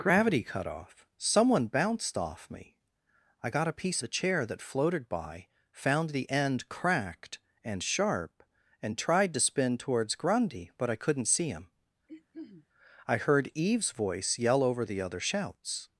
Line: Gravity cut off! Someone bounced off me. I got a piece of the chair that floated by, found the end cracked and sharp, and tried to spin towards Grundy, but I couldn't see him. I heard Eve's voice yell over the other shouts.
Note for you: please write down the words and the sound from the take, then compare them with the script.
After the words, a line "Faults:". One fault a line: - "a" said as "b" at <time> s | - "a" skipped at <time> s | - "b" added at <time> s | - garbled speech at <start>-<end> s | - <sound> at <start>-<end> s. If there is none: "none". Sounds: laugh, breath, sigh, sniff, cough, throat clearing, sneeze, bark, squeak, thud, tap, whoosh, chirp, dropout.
Gravity cut off! Someone bounced off me. I got a piece the chair that floated by, found the end cracked and sharp, and tried to spin towards Grundy, but I couldn't see him. I heard Eve's voice yell over the other shouts.
Faults:
- "of" skipped at 4.0 s
- throat clearing at 12.1-12.7 s